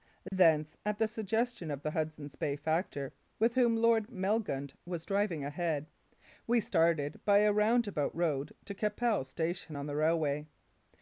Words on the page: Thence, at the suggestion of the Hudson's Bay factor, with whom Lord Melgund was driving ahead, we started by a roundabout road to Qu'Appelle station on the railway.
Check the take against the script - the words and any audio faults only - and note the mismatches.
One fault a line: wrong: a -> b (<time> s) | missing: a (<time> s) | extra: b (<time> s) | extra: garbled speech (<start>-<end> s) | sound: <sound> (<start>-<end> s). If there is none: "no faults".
sound: dropout (0.3-0.3 s)